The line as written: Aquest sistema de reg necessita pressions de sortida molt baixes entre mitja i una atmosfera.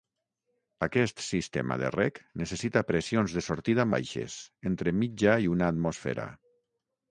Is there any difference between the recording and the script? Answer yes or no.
yes